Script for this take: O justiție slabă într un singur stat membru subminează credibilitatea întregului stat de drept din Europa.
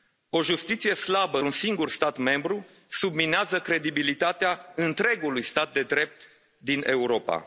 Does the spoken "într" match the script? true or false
false